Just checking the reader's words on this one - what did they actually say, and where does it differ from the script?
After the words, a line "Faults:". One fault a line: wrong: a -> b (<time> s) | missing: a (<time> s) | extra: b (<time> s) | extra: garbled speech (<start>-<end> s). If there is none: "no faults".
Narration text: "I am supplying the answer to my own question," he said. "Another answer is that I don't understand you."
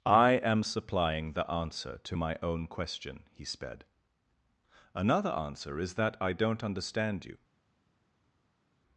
"I am supplying the answer to my own question," he sped. "Another answer is that I don't understand you."
Faults:
wrong: said -> sped (3.4 s)